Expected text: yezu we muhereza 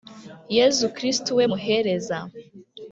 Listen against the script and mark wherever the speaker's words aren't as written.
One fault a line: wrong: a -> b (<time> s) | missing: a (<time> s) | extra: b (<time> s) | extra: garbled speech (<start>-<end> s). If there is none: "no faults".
extra: kristu (1.0 s)